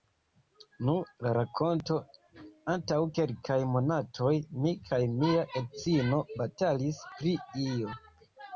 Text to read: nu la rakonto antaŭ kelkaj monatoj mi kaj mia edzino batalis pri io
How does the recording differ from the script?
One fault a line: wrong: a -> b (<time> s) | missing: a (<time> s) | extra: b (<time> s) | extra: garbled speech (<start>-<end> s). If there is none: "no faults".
no faults